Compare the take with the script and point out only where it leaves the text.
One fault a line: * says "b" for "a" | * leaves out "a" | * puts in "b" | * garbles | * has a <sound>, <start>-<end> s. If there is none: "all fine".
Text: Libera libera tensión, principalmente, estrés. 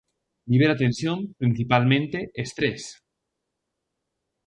* leaves out "libera"